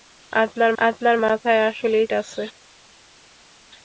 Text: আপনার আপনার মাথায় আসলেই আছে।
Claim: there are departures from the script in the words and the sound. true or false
false